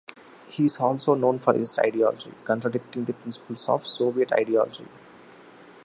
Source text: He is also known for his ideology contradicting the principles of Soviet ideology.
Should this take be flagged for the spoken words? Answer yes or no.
no